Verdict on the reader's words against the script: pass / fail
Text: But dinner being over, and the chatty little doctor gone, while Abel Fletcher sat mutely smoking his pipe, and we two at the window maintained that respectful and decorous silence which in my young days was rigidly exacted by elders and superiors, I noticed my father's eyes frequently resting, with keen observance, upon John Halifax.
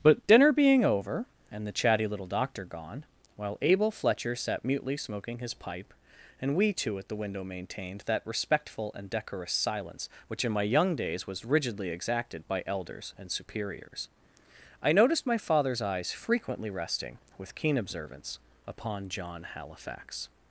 pass